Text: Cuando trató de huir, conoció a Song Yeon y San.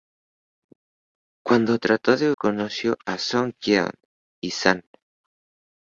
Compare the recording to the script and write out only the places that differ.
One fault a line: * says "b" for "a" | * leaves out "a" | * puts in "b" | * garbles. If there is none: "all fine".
* leaves out "huir"